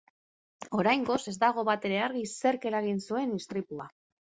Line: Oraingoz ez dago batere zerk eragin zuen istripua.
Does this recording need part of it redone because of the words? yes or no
yes